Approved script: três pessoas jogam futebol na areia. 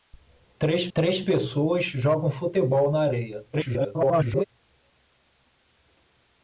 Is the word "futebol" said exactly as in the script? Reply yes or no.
yes